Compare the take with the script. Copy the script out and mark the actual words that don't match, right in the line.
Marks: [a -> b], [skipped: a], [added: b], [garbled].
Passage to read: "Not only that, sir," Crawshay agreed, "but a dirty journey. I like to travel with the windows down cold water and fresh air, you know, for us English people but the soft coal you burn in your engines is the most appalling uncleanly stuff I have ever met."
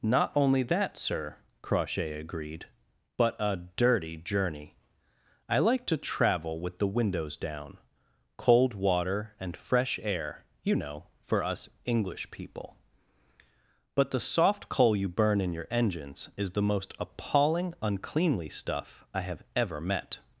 "Not only that, sir," Crawshay agreed, "but a dirty journey. I like to travel with the windows down cold water and fresh air, you know, for us English people but the soft coal you burn in your engines is the most appalling uncleanly stuff I have ever met."